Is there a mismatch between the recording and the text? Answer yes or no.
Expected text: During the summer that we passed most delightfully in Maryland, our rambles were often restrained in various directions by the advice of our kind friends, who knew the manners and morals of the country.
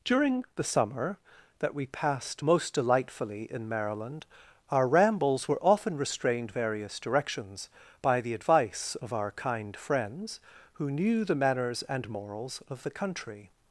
yes